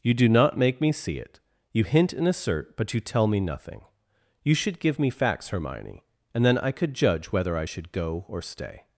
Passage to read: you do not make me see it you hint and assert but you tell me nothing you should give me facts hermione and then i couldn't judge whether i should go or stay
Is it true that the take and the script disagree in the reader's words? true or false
true